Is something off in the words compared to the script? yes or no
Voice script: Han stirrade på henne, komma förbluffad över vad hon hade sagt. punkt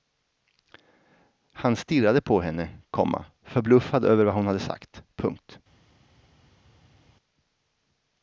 no